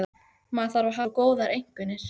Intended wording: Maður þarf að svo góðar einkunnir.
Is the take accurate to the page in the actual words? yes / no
yes